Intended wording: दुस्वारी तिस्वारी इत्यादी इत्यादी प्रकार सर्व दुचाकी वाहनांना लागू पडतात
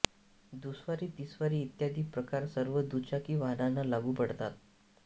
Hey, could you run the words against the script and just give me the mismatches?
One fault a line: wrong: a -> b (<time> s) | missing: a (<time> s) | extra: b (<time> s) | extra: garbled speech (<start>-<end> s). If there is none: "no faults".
missing: इत्यादी (2.0 s)